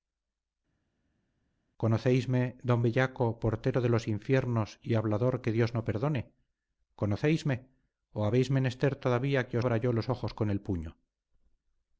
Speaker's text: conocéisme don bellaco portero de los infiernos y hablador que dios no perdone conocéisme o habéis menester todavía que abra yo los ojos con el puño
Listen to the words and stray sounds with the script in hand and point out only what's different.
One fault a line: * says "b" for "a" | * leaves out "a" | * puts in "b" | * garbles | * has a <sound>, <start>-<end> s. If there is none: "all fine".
all fine